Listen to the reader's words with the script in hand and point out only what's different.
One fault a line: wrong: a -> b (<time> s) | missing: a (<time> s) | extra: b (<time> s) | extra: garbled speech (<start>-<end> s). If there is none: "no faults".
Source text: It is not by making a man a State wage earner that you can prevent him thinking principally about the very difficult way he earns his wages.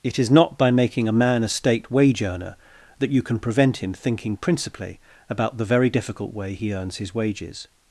no faults